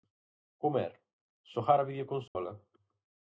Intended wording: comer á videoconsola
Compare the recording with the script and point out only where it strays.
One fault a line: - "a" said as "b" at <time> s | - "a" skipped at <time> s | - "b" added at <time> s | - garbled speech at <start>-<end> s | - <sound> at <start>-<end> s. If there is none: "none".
- "xogar" added at 1.5 s
- dropout at 2.3-2.4 s